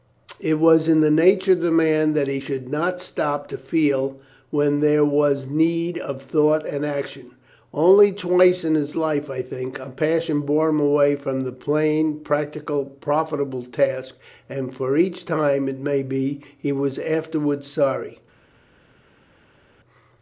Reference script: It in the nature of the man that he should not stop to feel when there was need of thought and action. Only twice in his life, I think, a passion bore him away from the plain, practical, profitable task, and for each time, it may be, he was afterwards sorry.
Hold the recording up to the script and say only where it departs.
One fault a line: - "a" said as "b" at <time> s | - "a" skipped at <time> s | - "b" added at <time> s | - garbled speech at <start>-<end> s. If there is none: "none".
- "was" added at 0.6 s